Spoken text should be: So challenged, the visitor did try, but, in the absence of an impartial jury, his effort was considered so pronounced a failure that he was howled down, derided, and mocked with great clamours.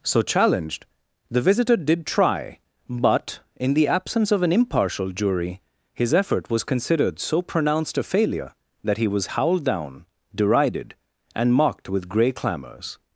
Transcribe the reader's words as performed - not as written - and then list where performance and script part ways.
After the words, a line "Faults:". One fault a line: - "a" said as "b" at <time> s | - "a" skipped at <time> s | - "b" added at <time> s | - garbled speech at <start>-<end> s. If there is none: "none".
So challenged, the visitor did try, but, in the absence of an impartial jury, his effort was considered so pronounced a failure that he was howled down, derided, and mocked with grey clamours.
Faults:
- "great" said as "grey" at 12.1 s